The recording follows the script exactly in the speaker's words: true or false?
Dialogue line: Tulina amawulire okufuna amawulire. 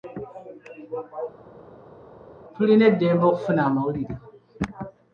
false